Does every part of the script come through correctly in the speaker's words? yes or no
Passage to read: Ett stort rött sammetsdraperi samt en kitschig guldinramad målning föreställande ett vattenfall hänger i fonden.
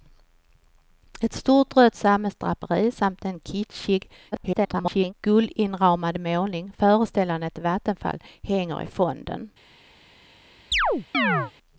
no